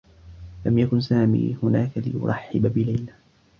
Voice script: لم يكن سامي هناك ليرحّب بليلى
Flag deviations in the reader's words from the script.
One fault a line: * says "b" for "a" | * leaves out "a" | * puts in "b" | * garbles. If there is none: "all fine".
all fine